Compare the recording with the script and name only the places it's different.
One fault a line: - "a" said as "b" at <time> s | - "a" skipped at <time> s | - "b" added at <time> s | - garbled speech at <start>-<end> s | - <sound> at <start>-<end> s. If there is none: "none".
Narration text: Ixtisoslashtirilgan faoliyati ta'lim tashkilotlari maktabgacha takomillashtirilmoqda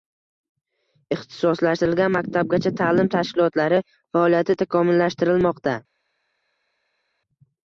- "faoliyati" said as "maktabgacha" at 2.1 s
- "maktabgacha" said as "faoliyati" at 4.2 s